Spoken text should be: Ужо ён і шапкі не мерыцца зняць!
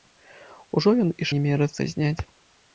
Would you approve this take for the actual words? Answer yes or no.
no